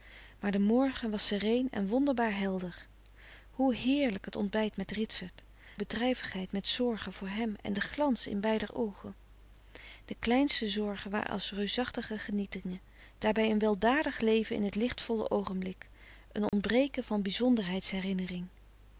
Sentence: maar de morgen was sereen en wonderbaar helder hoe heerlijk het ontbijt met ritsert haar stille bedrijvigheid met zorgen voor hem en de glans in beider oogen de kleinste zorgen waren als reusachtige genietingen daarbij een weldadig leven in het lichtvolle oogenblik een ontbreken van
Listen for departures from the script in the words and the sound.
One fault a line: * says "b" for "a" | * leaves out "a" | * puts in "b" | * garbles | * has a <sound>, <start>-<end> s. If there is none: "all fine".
* leaves out "haar stille"
* has a dropout, 16.5-16.5 s